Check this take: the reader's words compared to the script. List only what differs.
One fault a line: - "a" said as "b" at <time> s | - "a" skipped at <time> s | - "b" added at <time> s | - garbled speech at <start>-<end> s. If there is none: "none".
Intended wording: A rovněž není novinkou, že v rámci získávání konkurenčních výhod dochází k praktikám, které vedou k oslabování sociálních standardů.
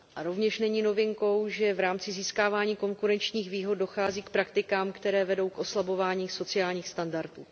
none